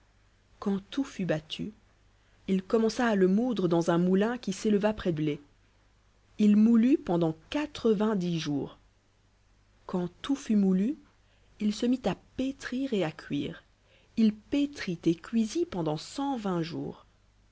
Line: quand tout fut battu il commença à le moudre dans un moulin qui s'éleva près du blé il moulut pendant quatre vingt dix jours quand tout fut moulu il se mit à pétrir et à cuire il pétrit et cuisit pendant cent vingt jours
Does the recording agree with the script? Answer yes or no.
no